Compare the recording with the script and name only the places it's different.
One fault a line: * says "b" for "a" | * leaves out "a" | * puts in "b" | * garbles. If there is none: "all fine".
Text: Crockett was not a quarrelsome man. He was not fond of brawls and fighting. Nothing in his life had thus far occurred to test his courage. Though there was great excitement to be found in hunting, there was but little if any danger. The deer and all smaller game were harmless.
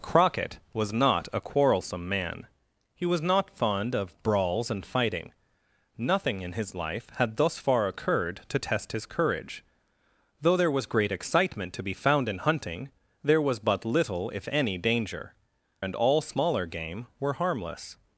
* leaves out "The deer"